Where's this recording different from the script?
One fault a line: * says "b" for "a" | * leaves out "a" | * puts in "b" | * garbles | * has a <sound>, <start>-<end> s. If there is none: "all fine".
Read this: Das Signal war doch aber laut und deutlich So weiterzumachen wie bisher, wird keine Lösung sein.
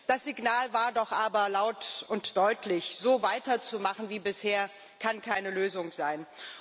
* says "kann" for "wird"